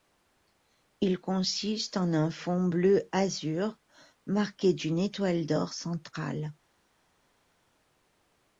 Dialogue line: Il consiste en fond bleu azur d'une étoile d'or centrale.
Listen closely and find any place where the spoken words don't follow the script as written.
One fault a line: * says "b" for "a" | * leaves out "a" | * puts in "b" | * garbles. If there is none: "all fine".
* puts in "un"
* puts in "marqué"